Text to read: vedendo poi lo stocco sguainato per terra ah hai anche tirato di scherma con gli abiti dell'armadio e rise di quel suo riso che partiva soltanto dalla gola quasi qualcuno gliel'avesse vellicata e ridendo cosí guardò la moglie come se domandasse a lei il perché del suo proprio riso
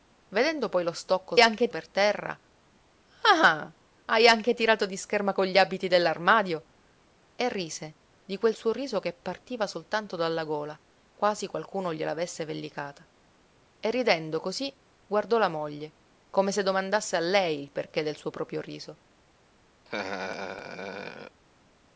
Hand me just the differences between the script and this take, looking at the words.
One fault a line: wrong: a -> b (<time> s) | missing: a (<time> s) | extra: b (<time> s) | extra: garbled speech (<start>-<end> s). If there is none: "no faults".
wrong: sguainato -> anche (1.4 s)